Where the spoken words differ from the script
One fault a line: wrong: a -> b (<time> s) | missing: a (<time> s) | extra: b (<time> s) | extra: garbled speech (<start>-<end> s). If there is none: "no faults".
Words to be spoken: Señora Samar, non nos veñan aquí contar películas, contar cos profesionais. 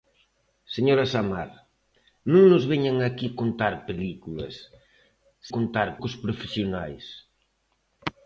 no faults